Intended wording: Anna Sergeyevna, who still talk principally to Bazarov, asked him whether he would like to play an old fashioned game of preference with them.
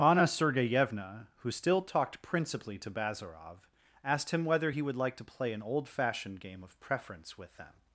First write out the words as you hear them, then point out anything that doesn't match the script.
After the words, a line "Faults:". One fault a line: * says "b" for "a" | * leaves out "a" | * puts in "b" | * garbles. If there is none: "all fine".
Anna Sergeyevna, who still talked principally to Bazarov, asked him whether he would like to play an old fashioned game of preference with them.
Faults:
* says "talked" for "talk"